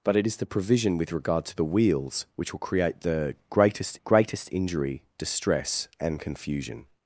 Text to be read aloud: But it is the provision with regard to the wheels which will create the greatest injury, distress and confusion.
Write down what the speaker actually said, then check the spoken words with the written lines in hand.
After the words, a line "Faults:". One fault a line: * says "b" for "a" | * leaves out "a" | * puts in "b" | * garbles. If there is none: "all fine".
But it is the provision with regard to the wheels which will create the greatest greatest injury, distress and confusion.
Faults:
* puts in "greatest"